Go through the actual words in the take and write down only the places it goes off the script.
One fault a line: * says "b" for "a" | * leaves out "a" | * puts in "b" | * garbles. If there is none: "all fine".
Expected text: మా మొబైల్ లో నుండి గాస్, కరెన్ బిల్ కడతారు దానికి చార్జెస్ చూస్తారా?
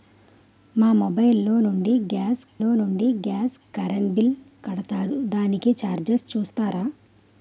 * puts in "లో నుండి గాస్"